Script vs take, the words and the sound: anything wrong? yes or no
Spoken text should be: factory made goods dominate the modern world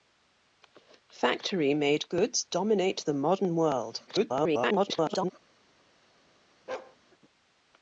yes